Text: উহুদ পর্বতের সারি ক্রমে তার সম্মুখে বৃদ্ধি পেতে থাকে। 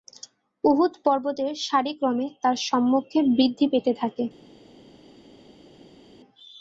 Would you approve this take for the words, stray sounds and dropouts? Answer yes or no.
yes